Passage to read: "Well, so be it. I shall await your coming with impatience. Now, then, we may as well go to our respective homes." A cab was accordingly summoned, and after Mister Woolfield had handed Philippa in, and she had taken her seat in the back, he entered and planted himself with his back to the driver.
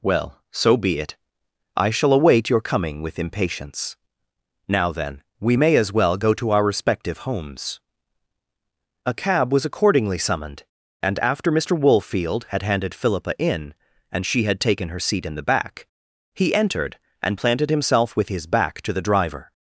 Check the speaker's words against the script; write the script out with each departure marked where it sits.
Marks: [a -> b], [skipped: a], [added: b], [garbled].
"Well, so be it. I shall await your coming with impatience. Now, then, we may as well go to our respective homes." A cab was accordingly summoned, and after Mister Woolfield had handed Philippa in, and she had taken her seat in the back, he entered and planted himself with his back to the driver.